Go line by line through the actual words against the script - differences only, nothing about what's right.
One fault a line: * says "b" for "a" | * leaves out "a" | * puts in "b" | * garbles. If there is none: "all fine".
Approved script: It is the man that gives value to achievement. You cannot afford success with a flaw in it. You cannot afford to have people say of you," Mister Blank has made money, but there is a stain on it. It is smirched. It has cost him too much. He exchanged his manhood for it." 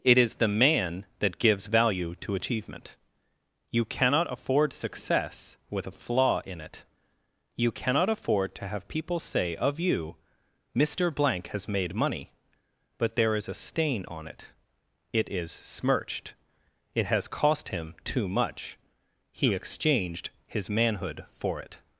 all fine